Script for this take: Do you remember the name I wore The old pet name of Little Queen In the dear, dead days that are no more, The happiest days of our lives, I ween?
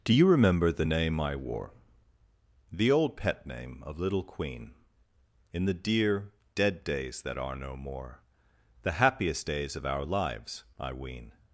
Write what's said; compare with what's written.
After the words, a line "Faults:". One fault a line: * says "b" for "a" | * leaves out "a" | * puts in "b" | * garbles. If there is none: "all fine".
Do you remember the name I wore The old pet name of Little Queen In the dear, dead days that are no more, The happiest days of our lives, I ween?
Faults:
all fine